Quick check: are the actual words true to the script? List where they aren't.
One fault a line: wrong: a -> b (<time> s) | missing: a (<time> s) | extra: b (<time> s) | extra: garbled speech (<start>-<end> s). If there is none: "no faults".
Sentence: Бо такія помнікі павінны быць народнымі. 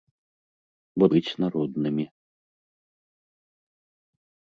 missing: такія помнікі павінны (1.1 s)